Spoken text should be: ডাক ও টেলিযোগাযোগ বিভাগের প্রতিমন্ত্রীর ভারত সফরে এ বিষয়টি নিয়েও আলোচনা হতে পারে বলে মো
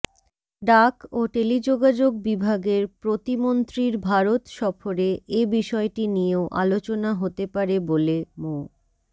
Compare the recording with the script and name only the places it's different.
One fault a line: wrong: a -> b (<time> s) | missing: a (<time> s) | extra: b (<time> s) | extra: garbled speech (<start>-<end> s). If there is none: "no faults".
no faults